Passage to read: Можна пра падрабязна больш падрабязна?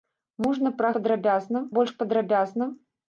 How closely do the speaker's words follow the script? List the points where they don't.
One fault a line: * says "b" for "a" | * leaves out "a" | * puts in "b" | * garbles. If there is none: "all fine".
all fine